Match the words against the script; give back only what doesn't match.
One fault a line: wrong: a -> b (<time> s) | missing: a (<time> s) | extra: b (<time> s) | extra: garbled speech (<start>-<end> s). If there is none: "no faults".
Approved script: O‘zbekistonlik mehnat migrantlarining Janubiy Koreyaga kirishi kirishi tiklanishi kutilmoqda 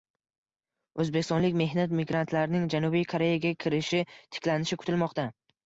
missing: kirishi (4.0 s)